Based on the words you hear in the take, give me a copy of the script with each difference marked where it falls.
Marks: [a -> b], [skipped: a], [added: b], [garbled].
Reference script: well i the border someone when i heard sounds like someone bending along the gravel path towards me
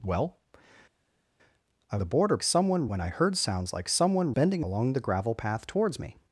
well i the border someone when i heard sounds like someone bending along the gravel path towards me